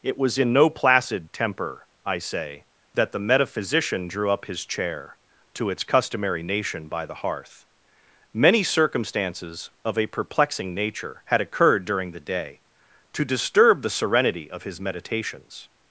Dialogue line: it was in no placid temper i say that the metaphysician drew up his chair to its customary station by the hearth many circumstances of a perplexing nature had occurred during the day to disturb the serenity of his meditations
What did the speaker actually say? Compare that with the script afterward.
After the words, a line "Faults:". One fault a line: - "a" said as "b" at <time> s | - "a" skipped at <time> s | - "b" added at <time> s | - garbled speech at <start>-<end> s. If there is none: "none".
it was in no placid temper i say that the metaphysician drew up his chair to its customary nation by the hearth many circumstances of a perplexing nature had occurred during the day to disturb the serenity of his meditations
Faults:
- "station" said as "nation" at 6.4 s